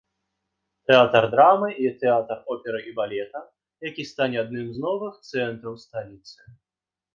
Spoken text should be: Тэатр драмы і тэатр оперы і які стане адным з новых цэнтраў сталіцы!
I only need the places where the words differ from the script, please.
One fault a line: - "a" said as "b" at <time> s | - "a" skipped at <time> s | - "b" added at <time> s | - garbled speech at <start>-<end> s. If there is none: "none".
- "балета" added at 3.0 s